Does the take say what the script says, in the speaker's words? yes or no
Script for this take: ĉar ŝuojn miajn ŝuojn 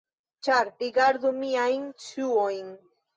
no